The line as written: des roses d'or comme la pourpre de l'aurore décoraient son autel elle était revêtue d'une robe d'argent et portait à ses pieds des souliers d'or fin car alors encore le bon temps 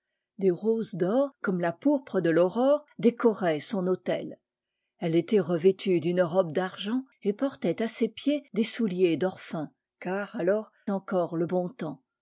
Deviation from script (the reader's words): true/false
false